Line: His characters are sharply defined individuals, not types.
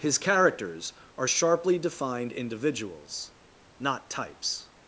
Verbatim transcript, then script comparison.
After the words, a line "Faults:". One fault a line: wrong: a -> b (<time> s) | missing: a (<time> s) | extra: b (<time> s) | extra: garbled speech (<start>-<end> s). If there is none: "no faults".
His characters are sharply defined individuals, not types.
Faults:
no faults